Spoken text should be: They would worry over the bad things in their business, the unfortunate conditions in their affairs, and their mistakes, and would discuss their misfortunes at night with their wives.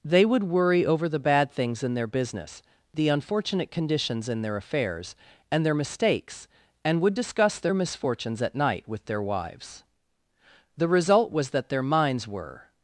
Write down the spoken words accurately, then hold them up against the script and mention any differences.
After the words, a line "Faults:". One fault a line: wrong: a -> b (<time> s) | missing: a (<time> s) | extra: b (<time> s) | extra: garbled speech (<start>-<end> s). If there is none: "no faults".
They would worry over the bad things in their business, the unfortunate conditions in their affairs, and their mistakes, and would discuss their misfortunes at night with their wives. The result was that their minds were
Faults:
extra: The result was that their minds were (10.8 s)